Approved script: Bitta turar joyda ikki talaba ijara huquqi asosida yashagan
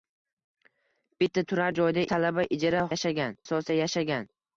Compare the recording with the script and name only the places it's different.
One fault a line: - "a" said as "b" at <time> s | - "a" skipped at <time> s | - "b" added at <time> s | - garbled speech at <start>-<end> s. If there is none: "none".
- "ikki" skipped at 2.0 s
- "huquqi" said as "yashagan" at 2.9 s